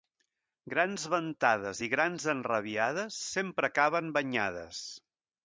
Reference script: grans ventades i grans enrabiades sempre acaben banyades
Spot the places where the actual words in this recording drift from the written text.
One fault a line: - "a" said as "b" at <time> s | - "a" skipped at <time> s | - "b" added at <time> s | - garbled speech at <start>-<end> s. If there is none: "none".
none